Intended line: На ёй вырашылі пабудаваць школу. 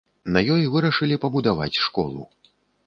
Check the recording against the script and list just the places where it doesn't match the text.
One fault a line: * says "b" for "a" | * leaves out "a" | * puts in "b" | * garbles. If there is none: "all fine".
all fine